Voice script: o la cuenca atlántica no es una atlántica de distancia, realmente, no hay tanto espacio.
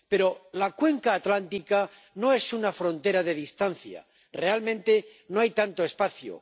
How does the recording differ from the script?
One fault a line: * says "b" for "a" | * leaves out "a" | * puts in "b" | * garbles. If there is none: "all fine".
* says "pero" for "o"
* says "frontera" for "atlántica"